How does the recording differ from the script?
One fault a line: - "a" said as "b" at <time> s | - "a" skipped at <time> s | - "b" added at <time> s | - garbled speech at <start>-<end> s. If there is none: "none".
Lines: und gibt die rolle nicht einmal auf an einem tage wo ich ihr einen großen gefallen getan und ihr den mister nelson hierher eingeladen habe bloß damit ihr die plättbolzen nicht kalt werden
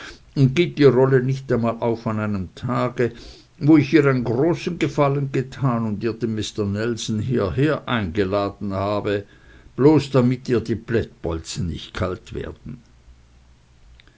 none